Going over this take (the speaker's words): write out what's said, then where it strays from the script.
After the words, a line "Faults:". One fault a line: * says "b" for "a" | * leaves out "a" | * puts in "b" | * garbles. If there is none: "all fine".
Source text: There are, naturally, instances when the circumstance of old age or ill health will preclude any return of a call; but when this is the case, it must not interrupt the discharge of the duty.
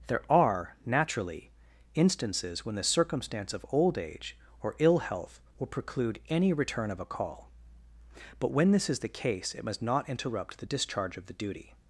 There are, naturally, instances when the circumstance of old age or ill health will preclude any return of a call; but when this is the case, it must not interrupt the discharge of the duty.
Faults:
all fine